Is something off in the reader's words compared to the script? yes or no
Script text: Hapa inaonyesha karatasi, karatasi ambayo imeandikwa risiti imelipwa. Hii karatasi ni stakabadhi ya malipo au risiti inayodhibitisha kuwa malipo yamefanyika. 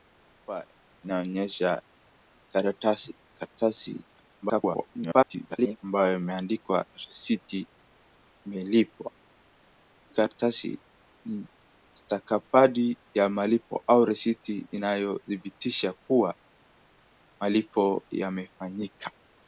yes